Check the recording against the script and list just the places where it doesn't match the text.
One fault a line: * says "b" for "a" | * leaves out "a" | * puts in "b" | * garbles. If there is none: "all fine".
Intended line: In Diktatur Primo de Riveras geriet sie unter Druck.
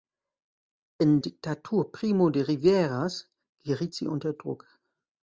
all fine